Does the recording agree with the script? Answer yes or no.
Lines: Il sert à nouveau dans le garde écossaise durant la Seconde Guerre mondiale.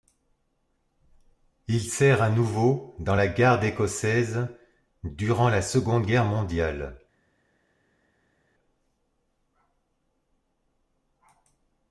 no